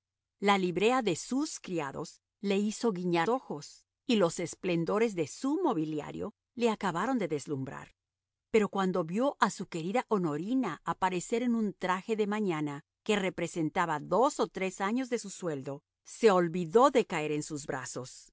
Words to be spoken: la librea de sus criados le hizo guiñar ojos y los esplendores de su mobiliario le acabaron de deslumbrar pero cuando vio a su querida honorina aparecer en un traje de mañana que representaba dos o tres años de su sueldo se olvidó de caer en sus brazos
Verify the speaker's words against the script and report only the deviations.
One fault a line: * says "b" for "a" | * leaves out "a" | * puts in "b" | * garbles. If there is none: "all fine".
all fine